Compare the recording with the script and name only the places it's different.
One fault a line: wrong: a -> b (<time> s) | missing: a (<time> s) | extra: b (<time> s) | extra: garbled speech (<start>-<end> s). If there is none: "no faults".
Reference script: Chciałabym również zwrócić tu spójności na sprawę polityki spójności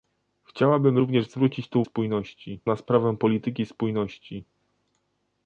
no faults